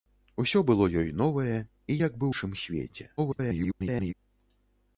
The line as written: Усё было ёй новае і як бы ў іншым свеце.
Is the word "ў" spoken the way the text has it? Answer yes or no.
no